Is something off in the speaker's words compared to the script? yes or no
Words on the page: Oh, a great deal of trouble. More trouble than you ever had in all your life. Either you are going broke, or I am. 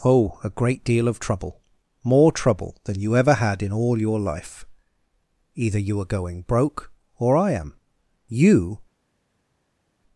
yes